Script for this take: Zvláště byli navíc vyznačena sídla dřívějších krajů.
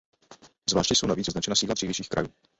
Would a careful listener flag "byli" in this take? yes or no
yes